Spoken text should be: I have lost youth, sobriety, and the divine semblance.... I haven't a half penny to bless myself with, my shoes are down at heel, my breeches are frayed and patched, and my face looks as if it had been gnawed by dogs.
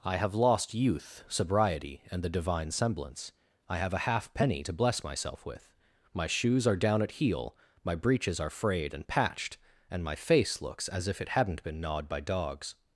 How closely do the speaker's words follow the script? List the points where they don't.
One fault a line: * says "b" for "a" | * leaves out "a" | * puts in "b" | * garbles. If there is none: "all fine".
* says "have" for "haven't"
* says "hadn't" for "had"